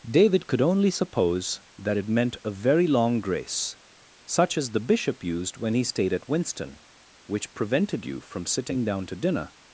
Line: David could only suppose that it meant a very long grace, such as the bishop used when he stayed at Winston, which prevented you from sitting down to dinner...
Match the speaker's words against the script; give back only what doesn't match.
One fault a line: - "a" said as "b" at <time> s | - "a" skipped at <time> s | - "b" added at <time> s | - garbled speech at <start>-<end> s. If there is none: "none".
none